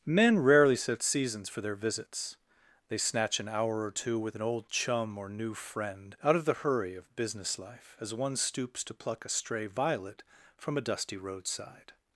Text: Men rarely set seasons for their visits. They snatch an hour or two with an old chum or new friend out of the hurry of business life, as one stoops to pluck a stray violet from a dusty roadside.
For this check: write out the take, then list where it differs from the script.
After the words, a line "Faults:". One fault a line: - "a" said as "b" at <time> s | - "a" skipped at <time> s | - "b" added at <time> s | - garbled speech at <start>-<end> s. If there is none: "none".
Men rarely set seasons for their visits. They snatch an hour or two with an old chum or new friend out of the hurry of business life, as one stoops to pluck a stray violet from a dusty roadside.
Faults:
none